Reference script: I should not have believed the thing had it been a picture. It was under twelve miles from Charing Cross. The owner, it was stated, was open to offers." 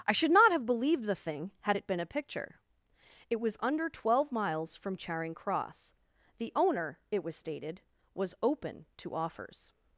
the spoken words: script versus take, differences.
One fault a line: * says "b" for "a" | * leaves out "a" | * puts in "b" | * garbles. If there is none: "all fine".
all fine